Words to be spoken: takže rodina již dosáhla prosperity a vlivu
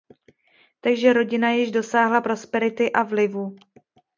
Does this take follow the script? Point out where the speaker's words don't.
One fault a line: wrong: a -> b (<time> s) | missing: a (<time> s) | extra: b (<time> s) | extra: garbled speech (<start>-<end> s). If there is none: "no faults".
no faults